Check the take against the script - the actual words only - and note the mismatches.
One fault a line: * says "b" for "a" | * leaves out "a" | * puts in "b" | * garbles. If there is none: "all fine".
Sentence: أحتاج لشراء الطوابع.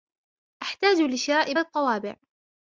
all fine